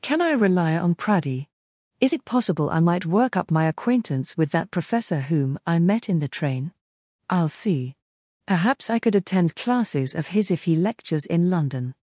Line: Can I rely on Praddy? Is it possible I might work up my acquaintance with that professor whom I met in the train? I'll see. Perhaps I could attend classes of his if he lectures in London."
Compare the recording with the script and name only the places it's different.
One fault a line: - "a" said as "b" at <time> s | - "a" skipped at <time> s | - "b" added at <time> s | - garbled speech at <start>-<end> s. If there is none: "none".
none